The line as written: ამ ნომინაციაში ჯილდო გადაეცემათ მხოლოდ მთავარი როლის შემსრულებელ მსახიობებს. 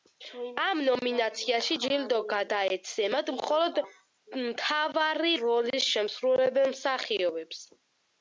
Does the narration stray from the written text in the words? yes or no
no